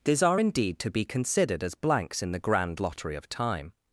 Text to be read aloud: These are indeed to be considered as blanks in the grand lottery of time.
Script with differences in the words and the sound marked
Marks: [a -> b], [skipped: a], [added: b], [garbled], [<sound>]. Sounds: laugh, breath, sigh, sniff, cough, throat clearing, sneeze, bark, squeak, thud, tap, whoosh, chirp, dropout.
These are indeed to be considered as blanks in the grand lottery of time.